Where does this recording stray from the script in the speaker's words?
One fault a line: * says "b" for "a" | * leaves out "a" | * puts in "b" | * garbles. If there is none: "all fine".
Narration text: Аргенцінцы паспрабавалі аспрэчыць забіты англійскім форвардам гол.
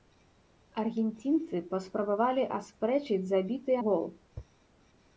* leaves out "англійскім форвардам"